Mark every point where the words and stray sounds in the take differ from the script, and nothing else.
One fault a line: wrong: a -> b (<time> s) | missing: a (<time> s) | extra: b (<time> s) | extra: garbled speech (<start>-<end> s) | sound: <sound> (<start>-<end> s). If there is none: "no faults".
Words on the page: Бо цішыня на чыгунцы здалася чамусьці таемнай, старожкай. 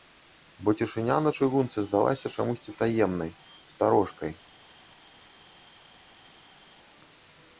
no faults